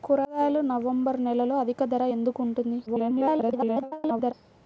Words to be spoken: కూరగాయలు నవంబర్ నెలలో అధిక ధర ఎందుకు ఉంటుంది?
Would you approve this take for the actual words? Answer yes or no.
no